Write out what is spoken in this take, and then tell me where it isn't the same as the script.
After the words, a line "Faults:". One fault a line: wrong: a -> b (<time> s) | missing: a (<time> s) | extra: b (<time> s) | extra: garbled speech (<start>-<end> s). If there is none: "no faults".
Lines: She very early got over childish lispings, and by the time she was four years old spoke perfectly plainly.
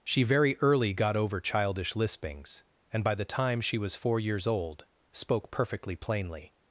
She very early got over childish lispings, and by the time she was four years old spoke perfectly plainly.
Faults:
no faults